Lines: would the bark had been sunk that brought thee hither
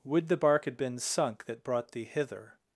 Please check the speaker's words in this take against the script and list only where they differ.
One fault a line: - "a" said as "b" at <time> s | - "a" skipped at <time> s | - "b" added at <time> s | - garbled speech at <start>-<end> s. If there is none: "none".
none